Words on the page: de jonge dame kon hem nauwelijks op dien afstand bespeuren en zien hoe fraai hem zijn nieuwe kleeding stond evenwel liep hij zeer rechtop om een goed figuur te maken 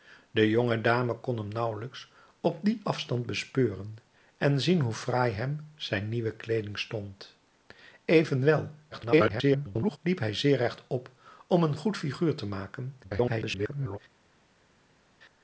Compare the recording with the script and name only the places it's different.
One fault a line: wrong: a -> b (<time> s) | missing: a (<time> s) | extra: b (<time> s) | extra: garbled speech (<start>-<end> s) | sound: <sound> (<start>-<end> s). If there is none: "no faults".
extra: garbled speech (8.9-10.0 s)
extra: garbled speech (13.0-14.0 s)